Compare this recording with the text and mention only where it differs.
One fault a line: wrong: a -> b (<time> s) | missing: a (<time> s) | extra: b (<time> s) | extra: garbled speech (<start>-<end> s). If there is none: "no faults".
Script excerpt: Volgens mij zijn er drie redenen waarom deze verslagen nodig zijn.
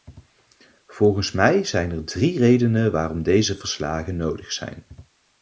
no faults